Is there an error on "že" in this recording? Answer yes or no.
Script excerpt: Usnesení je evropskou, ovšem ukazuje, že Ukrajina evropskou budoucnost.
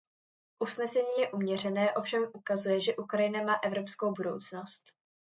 no